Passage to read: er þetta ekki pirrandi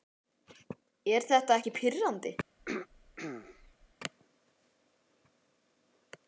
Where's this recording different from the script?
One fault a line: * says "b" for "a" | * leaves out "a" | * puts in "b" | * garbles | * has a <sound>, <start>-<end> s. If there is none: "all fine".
* has a throat clearing, 2.6-3.9 s